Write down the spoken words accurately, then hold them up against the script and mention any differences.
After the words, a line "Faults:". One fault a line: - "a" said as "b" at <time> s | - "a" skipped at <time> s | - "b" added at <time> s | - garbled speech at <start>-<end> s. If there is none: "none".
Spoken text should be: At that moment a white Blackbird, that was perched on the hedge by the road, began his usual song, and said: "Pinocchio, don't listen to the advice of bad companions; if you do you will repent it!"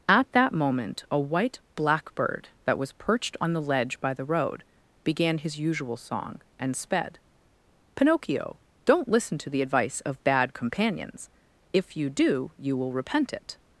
At that moment a white Blackbird, that was perched on the ledge by the road, began his usual song, and sped: "Pinocchio, don't listen to the advice of bad companions; if you do you will repent it!"
Faults:
- "hedge" said as "ledge" at 3.6 s
- "said" said as "sped" at 6.8 s